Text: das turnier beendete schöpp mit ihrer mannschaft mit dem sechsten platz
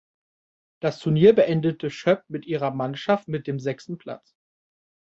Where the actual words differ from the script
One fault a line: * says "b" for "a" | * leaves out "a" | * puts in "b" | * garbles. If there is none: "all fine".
all fine